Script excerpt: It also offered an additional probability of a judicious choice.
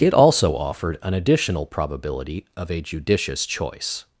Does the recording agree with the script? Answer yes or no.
yes